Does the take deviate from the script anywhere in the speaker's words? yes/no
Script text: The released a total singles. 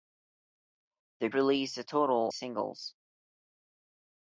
no